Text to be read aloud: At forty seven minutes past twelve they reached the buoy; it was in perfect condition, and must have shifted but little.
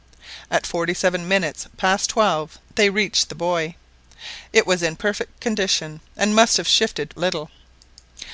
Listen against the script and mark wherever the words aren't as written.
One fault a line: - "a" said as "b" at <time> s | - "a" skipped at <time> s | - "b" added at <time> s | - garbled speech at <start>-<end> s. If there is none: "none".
- "but" skipped at 7.1 s